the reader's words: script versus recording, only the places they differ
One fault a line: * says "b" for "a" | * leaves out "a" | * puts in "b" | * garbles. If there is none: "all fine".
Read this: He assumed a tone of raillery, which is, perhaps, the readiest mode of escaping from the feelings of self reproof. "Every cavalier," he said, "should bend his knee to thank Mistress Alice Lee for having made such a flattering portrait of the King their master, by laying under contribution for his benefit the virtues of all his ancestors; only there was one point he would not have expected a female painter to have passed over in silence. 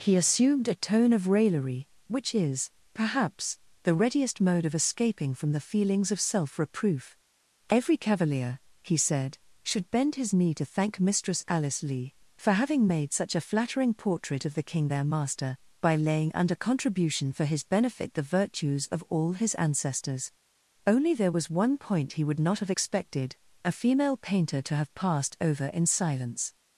all fine